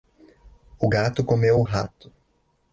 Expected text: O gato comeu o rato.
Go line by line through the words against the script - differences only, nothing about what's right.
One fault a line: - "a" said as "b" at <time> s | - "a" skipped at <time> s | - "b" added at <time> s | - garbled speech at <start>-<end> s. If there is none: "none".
none